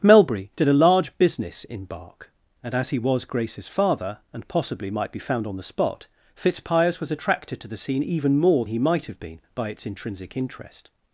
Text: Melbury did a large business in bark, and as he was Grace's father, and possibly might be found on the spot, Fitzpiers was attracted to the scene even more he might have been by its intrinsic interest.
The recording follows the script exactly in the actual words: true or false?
true